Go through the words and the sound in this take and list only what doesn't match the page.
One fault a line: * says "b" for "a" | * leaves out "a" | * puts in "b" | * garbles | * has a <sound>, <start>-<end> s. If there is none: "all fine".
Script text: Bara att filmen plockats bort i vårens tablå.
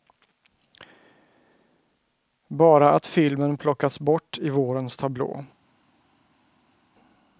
all fine